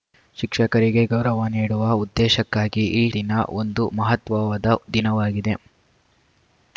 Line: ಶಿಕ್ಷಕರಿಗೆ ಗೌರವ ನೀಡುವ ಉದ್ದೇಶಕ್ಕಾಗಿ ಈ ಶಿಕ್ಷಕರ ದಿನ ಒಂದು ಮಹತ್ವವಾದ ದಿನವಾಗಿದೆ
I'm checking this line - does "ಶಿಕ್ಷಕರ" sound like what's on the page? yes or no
no